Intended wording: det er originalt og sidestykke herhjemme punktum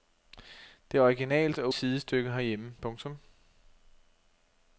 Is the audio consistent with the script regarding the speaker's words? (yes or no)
yes